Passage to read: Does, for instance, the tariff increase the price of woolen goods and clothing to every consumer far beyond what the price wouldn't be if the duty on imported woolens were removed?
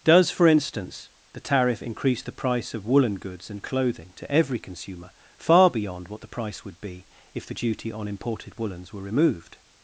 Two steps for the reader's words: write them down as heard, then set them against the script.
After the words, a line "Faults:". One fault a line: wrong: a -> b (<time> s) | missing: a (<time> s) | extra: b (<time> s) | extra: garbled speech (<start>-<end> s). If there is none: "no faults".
Does, for instance, the tariff increase the price of woolen goods and clothing to every consumer far beyond what the price would be if the duty on imported woolens were removed?
Faults:
wrong: wouldn't -> would (6.6 s)